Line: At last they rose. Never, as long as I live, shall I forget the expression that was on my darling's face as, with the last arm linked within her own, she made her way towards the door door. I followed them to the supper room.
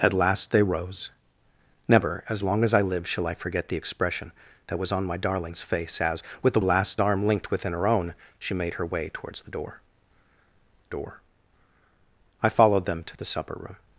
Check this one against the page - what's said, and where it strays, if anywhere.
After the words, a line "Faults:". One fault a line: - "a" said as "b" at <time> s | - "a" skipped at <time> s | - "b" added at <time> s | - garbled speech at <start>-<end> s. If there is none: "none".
At last they rose. Never, as long as I live, shall I forget the expression that was on my darling's face as, with the last arm linked within her own, she made her way towards the door door. I followed them to the supper room.
Faults:
none